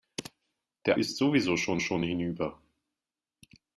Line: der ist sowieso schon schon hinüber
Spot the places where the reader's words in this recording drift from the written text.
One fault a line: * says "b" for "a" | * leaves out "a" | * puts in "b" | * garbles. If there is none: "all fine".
all fine